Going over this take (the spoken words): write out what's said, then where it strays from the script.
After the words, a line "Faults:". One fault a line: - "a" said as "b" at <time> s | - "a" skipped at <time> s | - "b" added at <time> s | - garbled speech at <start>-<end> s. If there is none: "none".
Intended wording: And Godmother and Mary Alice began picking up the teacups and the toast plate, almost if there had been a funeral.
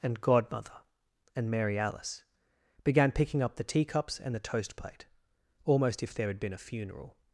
And Godmother and Mary Alice began picking up the teacups and the toast plate, almost if there had been a funeral.
Faults:
none